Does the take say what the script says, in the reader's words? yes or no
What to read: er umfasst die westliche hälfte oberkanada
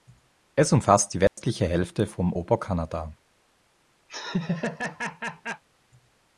no